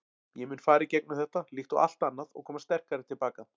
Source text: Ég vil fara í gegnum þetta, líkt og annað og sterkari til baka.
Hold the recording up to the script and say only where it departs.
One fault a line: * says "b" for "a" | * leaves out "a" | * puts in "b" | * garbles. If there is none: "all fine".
* says "mun" for "vil"
* puts in "allt"
* puts in "koma"